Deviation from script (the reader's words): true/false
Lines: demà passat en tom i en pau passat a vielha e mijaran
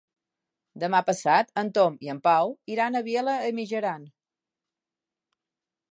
true